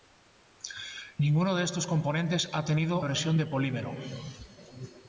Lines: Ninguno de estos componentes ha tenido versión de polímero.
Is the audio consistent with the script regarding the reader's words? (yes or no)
yes